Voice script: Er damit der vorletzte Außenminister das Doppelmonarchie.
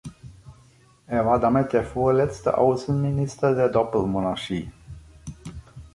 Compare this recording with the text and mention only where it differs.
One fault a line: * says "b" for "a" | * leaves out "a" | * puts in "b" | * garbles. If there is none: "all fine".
* puts in "war"
* says "der" for "das"